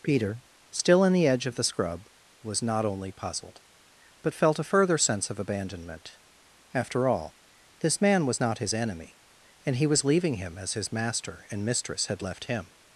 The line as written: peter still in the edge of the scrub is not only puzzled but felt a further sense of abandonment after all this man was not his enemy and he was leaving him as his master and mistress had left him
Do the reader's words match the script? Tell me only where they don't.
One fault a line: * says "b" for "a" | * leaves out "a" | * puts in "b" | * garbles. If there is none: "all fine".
* says "was" for "is"